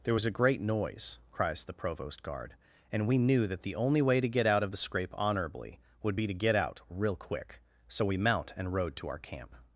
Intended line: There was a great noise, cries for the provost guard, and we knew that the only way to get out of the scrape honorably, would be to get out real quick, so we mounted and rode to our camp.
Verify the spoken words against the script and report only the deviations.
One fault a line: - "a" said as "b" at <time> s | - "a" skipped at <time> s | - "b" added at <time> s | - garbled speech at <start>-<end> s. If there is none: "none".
- "for" skipped at 1.6 s
- "mounted" said as "mount" at 8.2 s